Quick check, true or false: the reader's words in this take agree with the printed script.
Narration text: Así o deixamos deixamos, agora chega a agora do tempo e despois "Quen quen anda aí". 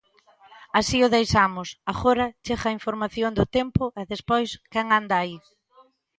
false